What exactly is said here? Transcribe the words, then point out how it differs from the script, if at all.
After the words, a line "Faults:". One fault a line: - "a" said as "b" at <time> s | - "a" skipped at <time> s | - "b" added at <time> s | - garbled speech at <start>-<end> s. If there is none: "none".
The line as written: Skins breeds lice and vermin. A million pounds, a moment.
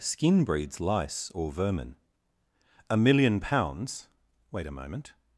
Skin breeds lice or vermin. A million pounds, wait a moment.
Faults:
- "Skins" said as "Skin" at 0.0 s
- "and" said as "or" at 1.3 s
- "wait" added at 4.5 s